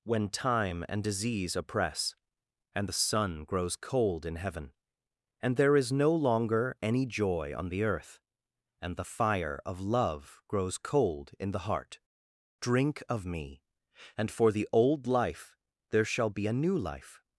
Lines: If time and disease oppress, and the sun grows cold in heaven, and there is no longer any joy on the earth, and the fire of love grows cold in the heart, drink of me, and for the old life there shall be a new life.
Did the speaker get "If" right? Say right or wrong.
wrong